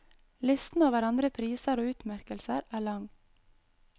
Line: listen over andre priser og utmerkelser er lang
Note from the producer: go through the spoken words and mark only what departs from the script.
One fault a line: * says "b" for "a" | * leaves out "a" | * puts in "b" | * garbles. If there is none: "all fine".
all fine